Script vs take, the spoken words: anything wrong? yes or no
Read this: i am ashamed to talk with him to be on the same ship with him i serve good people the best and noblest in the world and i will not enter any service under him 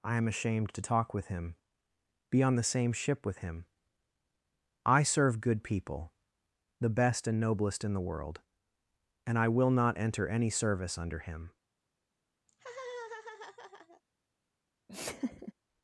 yes